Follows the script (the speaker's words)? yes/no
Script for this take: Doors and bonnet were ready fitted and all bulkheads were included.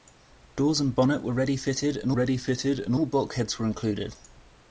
no